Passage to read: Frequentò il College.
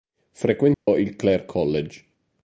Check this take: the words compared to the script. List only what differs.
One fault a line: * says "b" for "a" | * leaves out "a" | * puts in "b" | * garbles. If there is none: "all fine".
* puts in "Clare"